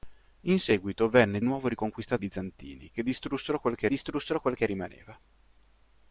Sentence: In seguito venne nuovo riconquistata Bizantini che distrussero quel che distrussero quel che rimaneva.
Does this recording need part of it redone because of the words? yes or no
no